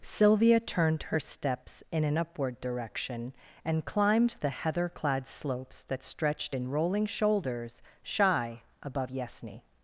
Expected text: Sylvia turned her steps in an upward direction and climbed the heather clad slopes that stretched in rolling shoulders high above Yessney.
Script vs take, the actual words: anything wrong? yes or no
yes